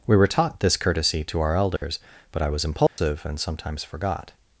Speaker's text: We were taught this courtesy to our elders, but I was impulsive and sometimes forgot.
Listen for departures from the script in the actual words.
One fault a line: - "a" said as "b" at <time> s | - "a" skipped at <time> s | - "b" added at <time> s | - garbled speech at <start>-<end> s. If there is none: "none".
none